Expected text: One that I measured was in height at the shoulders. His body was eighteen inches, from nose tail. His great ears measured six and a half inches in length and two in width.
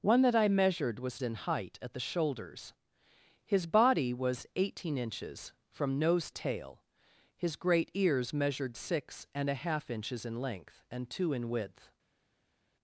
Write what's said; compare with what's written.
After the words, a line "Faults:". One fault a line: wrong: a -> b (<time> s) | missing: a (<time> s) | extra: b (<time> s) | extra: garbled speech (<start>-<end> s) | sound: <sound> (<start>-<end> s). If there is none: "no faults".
One that I measured was in height at the shoulders. His body was eighteen inches, from nose tail. His great ears measured six and a half inches in length and two in width.
Faults:
no faults